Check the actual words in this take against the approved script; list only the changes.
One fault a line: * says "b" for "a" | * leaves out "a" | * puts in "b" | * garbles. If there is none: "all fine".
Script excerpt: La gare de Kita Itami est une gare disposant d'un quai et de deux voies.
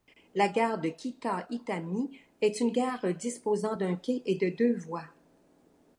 all fine